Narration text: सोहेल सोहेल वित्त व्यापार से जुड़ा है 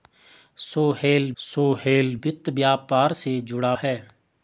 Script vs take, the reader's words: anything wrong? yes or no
no